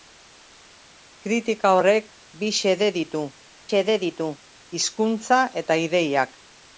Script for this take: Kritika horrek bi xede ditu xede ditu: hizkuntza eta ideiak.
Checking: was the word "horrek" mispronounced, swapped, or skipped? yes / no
no